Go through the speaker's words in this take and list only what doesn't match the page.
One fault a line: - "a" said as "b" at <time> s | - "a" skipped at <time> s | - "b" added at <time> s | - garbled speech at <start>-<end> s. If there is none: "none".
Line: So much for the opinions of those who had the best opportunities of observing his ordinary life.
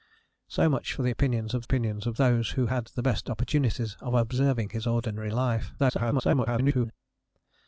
- "opinions of" added at 1.6 s
- garbled speech at 5.8-6.9 s